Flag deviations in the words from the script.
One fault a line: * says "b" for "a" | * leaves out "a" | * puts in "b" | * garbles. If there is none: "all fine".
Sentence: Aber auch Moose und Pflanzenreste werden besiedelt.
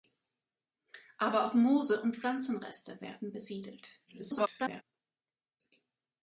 * garbles